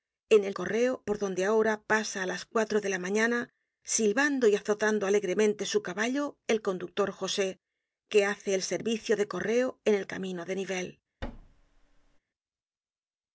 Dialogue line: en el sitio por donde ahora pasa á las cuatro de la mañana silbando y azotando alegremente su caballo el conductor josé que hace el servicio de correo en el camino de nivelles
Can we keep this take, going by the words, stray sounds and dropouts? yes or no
no